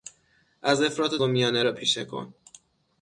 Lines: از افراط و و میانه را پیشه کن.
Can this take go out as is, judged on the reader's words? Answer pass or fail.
pass